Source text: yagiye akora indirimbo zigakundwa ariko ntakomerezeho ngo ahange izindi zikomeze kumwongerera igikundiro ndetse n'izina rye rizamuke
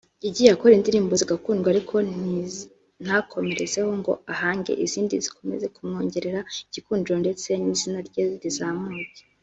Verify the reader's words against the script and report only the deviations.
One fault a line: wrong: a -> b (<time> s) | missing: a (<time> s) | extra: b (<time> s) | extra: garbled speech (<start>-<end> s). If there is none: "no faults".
no faults